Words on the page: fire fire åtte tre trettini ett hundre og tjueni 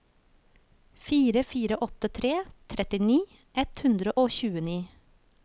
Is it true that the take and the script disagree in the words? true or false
false